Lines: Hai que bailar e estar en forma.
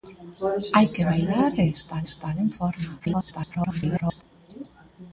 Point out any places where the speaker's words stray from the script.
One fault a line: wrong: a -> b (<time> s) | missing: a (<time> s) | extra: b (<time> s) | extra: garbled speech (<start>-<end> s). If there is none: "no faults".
extra: estar (2.1 s)
extra: garbled speech (3.0-4.2 s)